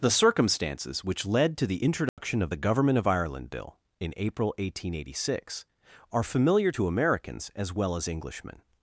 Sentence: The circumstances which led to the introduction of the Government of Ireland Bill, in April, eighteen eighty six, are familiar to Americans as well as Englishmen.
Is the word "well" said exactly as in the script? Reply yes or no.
yes